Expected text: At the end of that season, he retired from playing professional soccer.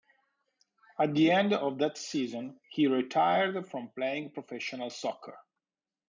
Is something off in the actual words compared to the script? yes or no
no